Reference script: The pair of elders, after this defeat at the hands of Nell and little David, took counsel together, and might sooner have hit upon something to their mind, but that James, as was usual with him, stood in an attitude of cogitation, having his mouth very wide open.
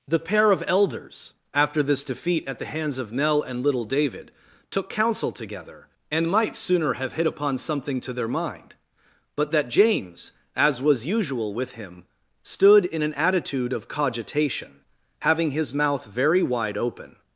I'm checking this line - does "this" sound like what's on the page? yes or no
yes